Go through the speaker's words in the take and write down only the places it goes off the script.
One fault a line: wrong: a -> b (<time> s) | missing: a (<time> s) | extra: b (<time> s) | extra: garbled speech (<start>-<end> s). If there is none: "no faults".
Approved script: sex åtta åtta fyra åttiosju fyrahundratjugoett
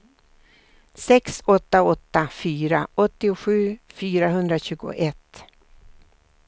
no faults